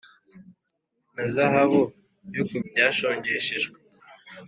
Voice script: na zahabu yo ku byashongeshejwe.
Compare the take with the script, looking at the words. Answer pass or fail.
pass